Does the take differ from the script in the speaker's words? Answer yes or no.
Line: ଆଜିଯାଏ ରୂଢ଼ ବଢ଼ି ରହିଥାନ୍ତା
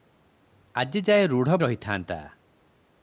yes